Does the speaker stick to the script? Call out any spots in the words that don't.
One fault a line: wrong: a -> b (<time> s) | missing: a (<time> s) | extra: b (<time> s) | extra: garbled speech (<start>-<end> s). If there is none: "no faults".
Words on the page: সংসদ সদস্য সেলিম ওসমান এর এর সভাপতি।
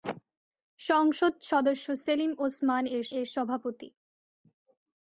no faults